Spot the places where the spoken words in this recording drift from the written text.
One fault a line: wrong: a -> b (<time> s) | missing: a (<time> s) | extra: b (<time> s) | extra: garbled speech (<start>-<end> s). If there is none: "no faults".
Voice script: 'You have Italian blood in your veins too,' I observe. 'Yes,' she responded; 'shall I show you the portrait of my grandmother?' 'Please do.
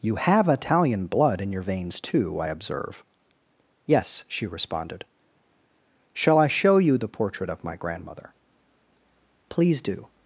no faults